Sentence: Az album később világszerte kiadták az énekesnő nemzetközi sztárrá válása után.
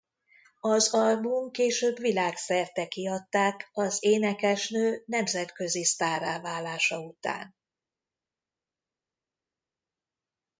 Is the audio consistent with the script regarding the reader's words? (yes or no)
yes